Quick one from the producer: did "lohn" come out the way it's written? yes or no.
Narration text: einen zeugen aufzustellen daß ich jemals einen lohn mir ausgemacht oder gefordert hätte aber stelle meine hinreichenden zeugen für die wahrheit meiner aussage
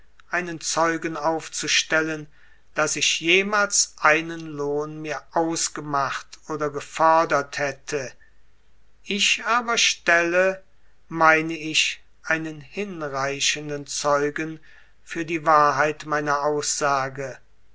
yes